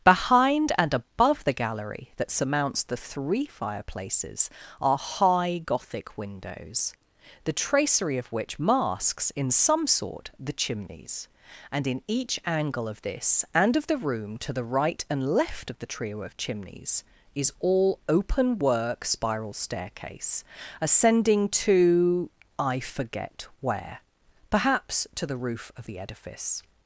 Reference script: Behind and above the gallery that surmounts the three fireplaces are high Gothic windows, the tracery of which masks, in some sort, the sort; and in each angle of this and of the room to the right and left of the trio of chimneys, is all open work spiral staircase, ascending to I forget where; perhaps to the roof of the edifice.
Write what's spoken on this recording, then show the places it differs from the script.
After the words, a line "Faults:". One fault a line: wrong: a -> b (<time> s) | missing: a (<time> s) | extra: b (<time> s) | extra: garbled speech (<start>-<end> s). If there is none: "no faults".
Behind and above the gallery that surmounts the three fireplaces are high Gothic windows, the tracery of which masks, in some sort, the chimneys; and in each angle of this and of the room to the right and left of the trio of chimneys, is all open work spiral staircase, ascending to I forget where; perhaps to the roof of the edifice.
Faults:
wrong: sort -> chimneys (10.5 s)